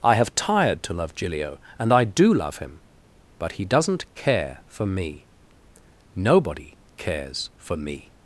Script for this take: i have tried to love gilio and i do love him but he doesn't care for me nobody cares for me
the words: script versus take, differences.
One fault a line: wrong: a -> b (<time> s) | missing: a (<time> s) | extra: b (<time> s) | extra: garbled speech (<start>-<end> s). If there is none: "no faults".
wrong: tried -> tired (0.3 s)